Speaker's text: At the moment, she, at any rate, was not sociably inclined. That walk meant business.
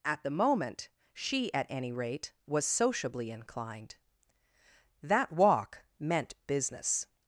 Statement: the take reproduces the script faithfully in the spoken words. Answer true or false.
false